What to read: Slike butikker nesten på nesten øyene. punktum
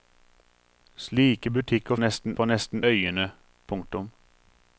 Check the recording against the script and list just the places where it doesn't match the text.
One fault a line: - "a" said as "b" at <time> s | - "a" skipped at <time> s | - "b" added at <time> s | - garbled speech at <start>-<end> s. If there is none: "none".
none